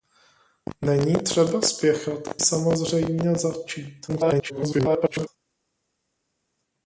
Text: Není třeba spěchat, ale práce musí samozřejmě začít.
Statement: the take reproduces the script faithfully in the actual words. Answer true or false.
false